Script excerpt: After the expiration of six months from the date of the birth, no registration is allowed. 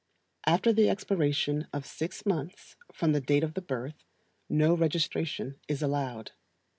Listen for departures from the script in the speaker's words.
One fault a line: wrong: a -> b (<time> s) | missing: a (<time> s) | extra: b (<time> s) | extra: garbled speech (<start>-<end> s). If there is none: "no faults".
no faults